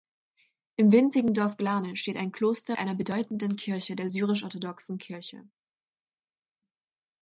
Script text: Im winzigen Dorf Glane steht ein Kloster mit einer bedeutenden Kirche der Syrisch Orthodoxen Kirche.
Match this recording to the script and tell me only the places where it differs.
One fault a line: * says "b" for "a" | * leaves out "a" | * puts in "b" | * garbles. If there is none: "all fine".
* leaves out "mit"